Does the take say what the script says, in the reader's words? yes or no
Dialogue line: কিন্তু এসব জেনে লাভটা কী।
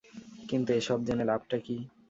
yes